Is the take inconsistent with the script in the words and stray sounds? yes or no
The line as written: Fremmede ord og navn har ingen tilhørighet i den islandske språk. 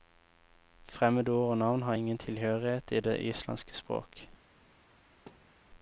yes